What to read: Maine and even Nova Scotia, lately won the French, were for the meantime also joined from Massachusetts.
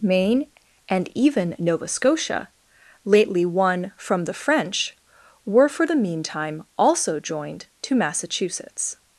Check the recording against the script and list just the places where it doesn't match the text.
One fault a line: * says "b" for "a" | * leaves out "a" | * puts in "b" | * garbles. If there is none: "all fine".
* puts in "from"
* says "to" for "from"